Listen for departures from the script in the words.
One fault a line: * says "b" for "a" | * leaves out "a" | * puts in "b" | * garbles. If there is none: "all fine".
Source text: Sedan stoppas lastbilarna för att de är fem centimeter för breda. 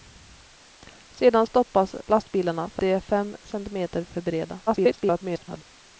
* leaves out "att"
* garbles